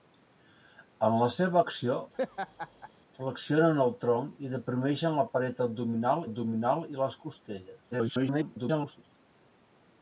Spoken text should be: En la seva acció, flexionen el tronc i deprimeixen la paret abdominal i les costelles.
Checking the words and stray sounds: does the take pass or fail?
fail